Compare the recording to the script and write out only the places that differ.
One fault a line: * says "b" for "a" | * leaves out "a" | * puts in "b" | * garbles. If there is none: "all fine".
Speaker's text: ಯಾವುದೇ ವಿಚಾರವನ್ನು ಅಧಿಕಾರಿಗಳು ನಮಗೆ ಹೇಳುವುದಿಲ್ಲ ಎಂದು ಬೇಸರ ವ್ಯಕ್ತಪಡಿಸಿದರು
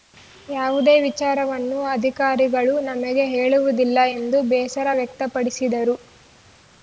all fine